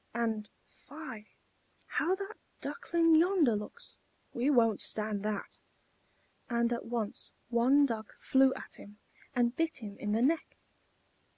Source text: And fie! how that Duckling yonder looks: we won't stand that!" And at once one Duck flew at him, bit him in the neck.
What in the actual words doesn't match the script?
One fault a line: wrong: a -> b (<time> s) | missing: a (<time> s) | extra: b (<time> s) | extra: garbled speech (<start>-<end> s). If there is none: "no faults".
extra: and (9.4 s)